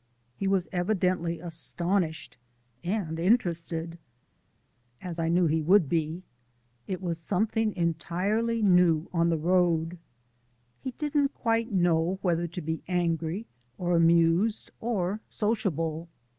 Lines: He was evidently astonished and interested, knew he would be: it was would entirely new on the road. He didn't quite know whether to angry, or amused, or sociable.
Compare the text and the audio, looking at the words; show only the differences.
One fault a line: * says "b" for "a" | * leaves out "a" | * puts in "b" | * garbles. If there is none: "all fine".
* puts in "as I"
* says "something" for "would"
* puts in "be"